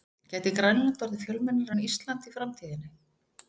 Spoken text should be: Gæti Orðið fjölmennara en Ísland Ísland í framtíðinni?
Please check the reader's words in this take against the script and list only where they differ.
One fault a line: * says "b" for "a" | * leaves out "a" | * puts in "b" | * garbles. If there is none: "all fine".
* puts in "Grænland"
* leaves out "Ísland"